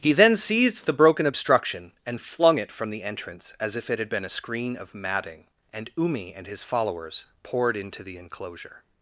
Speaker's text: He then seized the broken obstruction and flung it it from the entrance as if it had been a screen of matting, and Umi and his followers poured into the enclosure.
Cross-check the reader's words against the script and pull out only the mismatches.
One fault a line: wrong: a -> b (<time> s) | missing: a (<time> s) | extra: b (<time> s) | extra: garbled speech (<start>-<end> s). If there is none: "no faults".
missing: it (2.7 s)